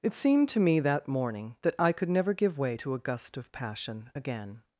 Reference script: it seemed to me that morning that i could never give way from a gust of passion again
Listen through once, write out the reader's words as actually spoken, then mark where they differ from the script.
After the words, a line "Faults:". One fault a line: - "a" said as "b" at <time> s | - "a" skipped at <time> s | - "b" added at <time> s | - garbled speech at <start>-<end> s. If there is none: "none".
it seemed to me that morning that i could never give way to a gust of passion again
Faults:
- "from" said as "to" at 2.7 s